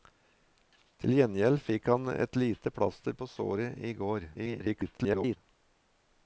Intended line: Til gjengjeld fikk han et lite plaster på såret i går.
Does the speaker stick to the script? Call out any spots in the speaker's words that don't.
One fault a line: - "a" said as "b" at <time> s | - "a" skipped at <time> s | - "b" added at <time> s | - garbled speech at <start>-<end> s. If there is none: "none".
- garbled speech at 4.3-5.4 s